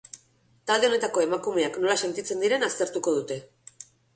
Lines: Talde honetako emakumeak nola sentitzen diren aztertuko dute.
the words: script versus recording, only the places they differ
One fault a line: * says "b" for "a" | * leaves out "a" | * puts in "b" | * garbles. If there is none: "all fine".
all fine